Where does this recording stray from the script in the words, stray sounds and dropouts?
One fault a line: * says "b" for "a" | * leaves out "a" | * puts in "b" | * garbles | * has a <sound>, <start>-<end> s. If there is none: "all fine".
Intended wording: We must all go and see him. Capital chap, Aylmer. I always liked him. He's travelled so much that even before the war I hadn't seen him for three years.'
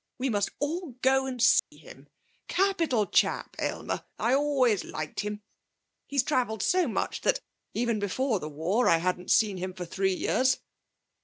* has a dropout, 1.6-1.7 s